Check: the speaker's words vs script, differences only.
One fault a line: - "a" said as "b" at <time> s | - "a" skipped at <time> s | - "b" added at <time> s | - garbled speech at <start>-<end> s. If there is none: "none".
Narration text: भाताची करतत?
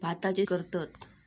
none